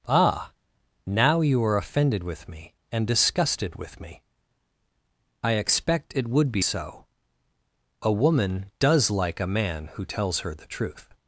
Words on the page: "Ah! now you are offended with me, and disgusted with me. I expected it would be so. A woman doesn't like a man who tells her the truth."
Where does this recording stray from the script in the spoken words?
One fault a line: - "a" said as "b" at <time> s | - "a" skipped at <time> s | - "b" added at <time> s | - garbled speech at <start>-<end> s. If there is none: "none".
- "expected" said as "expect" at 5.5 s
- "doesn't" said as "does" at 8.8 s